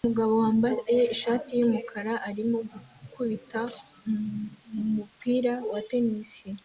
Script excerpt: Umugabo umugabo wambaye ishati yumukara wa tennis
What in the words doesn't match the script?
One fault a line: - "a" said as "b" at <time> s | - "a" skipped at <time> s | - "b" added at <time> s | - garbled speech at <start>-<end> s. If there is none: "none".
- "umugabo" skipped at 0.3 s
- "arimo gukubita umupira" added at 2.3 s